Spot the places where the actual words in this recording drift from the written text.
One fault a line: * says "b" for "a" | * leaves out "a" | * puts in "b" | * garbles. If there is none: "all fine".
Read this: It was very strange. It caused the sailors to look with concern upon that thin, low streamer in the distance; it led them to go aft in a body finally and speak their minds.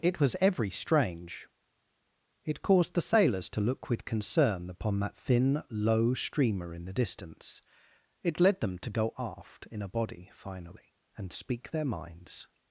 * says "every" for "very"